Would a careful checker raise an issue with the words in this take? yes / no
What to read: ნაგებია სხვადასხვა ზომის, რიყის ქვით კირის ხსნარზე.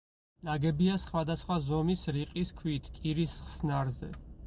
no